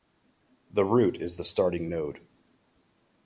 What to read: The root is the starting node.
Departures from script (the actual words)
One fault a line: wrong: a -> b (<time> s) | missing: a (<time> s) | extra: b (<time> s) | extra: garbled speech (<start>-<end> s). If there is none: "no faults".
no faults